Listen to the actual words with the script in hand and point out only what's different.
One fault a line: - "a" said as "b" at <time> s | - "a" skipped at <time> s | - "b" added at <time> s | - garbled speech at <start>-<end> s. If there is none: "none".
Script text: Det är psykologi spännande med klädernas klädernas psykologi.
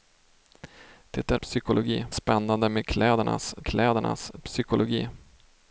none